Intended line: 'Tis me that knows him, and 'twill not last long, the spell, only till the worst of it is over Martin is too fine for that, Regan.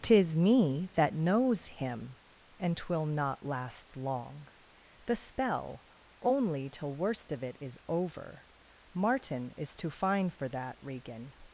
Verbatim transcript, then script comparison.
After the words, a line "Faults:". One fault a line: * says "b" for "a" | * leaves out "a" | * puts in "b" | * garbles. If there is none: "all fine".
'Tis me that knows him, and 'twill not last long, the spell, only till worst of it is over Martin is too fine for that, Regan.
Faults:
* leaves out "the"